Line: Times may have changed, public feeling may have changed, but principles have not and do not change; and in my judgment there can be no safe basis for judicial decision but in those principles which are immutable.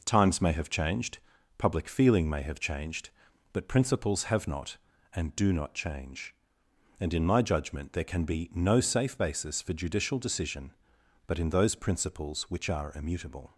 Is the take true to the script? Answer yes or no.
yes